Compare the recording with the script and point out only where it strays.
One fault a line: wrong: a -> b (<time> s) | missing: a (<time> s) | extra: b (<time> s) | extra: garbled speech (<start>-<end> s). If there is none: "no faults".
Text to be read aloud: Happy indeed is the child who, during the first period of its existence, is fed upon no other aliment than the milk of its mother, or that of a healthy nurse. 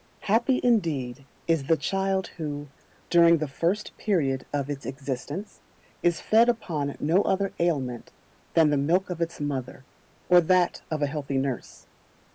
no faults